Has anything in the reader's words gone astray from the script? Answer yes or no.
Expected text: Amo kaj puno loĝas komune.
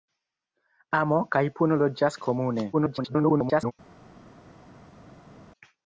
yes